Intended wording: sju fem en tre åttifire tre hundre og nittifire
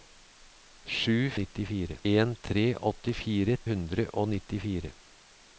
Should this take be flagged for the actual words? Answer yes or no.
yes